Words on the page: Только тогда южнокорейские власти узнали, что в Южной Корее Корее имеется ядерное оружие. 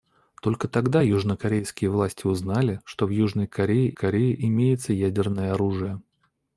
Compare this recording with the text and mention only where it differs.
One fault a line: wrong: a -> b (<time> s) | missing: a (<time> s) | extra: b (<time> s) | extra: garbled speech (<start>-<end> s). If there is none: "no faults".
no faults